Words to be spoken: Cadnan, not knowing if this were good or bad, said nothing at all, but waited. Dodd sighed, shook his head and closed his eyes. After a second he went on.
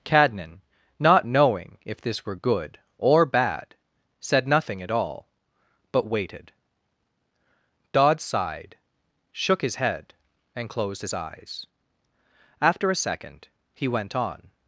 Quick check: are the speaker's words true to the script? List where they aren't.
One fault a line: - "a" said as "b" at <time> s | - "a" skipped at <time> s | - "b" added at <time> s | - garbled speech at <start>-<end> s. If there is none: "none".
none